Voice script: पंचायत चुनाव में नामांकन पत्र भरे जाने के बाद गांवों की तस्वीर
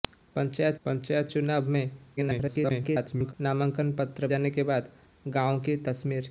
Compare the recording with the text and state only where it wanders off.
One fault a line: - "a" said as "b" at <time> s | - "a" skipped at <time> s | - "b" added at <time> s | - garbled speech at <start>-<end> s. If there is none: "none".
- "पंचायत" added at 0.8 s
- garbled speech at 2.2-3.3 s
- "भरे" skipped at 4.3 s